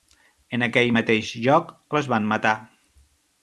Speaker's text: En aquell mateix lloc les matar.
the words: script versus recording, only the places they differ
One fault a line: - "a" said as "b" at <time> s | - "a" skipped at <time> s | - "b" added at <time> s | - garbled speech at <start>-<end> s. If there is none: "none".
- "van" added at 2.1 s